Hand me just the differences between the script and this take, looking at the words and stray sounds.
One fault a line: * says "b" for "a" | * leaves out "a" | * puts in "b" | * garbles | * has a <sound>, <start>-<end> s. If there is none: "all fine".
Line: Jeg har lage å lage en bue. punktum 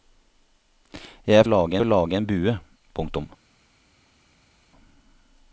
all fine